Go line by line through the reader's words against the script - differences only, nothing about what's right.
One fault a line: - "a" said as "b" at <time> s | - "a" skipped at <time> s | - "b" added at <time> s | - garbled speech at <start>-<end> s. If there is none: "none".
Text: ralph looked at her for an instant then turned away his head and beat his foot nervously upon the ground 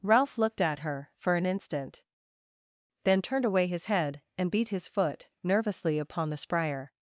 - "ground" said as "spryer" at 6.4 s